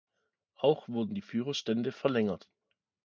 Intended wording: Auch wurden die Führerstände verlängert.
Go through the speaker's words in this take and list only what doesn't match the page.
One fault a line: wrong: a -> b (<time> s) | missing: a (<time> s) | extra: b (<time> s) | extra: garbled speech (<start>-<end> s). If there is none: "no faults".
no faults